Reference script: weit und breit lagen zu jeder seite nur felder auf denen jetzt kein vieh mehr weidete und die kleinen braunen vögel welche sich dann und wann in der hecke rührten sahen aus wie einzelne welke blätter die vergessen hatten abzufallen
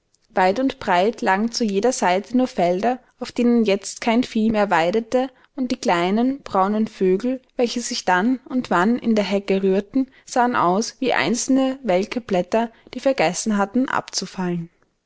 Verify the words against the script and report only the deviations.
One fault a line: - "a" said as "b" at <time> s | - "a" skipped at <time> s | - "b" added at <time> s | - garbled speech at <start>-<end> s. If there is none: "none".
none